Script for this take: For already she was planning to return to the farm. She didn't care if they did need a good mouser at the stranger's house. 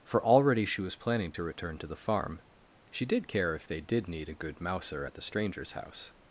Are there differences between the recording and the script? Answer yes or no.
yes